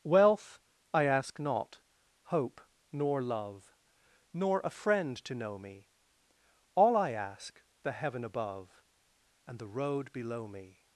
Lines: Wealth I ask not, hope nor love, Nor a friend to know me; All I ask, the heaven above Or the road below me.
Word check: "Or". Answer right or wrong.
wrong